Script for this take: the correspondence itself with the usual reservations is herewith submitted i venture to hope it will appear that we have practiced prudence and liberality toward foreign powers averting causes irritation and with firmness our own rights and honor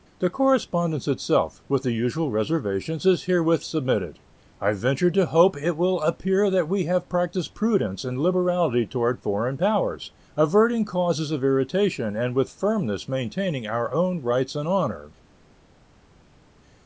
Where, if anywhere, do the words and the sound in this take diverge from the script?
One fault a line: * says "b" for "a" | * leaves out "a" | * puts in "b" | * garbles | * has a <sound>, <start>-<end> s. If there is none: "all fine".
* puts in "of"
* puts in "maintaining"